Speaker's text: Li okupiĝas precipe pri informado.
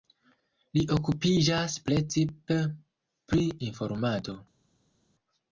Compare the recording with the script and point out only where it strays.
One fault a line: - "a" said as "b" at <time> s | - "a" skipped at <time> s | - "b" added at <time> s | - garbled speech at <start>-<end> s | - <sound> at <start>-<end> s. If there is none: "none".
none